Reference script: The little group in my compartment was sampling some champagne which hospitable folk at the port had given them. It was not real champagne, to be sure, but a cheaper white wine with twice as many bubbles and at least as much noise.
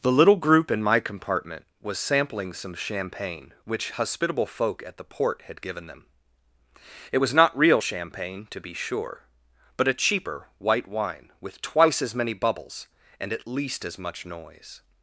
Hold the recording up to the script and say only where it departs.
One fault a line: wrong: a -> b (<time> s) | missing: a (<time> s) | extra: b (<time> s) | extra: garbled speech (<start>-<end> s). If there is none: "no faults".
no faults